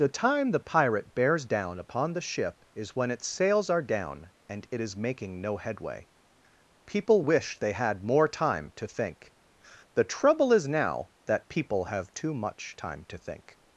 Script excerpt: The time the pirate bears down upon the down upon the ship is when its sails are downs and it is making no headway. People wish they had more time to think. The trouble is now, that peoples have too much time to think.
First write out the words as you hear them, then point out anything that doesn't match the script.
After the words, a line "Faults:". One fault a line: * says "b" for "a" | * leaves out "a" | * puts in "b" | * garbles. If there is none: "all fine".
The time the pirate bears down upon the ship is when its sails are down and it is making no headway. People wish they had more time to think. The trouble is now, that people have too much time to think.
Faults:
* leaves out "down upon the"
* says "down" for "downs"
* says "people" for "peoples"